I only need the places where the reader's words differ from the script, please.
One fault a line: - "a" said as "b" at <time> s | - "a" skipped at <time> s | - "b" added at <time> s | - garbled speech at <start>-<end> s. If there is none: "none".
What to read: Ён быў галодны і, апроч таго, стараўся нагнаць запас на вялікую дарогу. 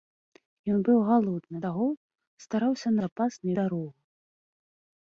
- "і апроч" skipped at 1.6 s
- "нагнаць" skipped at 2.9 s
- "вялікую" skipped at 3.5 s